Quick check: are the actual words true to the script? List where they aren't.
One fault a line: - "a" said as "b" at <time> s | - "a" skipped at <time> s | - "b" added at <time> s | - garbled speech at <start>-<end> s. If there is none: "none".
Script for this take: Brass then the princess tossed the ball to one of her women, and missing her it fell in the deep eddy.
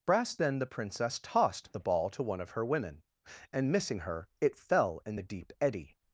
none